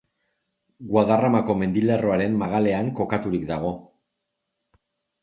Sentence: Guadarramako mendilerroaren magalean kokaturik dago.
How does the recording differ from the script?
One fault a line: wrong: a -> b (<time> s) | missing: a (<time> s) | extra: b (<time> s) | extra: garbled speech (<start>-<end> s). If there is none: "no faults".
no faults